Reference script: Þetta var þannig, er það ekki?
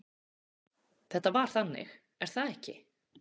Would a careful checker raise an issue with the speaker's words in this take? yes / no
no